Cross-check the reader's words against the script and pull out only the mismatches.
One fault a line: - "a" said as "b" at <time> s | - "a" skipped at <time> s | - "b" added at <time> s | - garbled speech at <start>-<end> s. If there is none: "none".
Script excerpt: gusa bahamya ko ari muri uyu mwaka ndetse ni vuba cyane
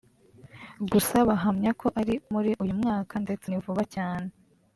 none